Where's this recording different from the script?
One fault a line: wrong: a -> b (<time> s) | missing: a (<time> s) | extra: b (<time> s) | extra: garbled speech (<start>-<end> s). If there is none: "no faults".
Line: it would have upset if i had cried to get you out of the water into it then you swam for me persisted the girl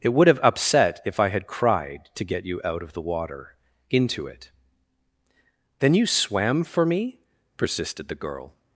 no faults